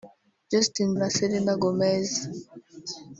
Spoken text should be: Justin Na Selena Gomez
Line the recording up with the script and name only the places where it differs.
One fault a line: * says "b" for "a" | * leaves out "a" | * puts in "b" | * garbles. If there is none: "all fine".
all fine